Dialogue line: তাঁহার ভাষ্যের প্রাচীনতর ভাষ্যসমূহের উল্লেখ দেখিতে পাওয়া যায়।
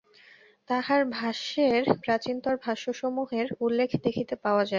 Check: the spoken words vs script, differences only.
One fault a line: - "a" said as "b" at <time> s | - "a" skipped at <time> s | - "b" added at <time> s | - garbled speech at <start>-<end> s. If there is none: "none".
none